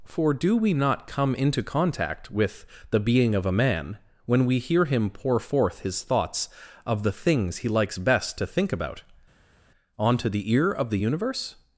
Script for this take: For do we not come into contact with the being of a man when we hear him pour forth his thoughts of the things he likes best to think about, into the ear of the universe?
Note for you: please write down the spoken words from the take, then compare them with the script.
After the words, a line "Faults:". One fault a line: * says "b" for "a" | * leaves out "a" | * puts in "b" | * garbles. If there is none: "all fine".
For do we not come into contact with the being of a man when we hear him pour forth his thoughts of the things he likes best to think about, onto the ear of the universe?
Faults:
* says "onto" for "into"